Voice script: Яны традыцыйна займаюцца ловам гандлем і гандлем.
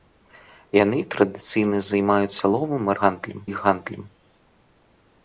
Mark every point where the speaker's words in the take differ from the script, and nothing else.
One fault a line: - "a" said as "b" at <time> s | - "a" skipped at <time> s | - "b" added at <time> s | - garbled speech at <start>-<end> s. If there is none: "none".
none